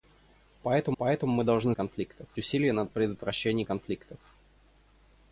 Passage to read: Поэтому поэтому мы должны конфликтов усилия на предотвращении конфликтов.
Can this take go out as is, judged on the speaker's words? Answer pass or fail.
pass